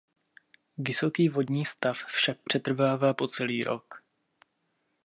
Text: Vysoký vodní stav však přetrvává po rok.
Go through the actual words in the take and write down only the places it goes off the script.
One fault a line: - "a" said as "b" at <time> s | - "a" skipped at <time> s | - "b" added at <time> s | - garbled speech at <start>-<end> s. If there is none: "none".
- "celý" added at 3.3 s